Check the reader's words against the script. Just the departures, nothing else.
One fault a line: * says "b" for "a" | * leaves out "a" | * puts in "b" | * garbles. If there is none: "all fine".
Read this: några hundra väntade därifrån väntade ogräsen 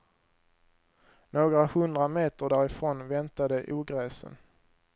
* says "meter" for "väntade"